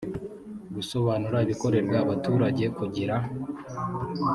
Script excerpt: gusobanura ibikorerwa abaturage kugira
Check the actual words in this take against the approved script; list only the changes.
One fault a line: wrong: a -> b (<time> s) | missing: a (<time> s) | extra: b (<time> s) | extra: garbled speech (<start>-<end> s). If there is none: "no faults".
no faults